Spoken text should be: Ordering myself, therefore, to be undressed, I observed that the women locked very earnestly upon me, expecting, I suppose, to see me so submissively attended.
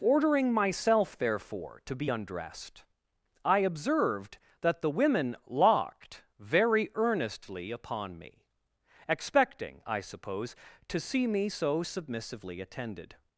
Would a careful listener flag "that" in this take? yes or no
no